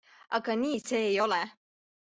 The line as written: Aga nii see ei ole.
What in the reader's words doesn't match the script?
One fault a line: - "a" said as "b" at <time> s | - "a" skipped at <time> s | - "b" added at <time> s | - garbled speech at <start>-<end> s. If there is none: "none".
none